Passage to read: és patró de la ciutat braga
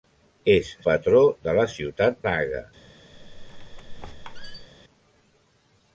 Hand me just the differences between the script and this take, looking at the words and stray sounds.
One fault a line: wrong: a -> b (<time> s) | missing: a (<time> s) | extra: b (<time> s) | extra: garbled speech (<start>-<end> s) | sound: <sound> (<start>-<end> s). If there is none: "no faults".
sound: squeak (3.1-4.7 s)